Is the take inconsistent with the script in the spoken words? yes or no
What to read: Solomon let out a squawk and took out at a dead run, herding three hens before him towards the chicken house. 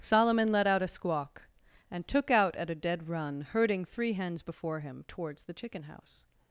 no